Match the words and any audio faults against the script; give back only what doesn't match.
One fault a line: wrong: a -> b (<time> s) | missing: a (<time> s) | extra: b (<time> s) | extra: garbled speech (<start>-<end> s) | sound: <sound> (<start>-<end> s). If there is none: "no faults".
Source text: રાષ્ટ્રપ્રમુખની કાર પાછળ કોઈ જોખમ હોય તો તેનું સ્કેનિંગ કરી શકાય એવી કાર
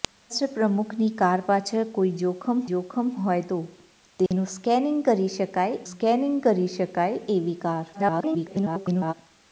extra: જોખમ (2.7 s)
sound: dropout (4.3-4.3 s)
extra: સ્કેનિંગ કરી શકાય (5.9 s)
extra: garbled speech (7.9-9.1 s)